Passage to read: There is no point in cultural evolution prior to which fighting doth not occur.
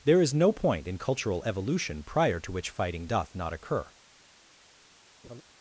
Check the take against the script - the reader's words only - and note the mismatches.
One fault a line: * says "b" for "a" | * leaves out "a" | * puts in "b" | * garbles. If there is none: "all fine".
all fine